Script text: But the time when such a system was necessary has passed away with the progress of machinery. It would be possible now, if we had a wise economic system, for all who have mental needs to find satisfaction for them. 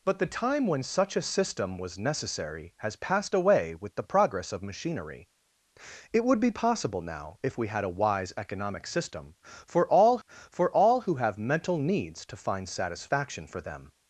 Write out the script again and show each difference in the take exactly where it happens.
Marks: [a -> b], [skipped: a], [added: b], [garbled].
But the time when such a system was necessary has passed away with the progress of machinery. It would be possible now, if we had a wise economic system, for all [added: for all] who have mental needs to find satisfaction for them.